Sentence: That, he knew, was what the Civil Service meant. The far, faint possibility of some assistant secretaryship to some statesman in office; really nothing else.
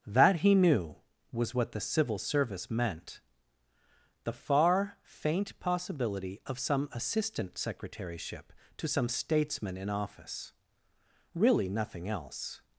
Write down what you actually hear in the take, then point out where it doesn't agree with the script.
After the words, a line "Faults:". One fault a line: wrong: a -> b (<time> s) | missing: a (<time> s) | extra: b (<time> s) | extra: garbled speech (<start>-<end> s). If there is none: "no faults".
That, he knew, was what the Civil Service meant. The far, faint possibility of some assistant secretaryship to some statesman in office; really nothing else.
Faults:
no faults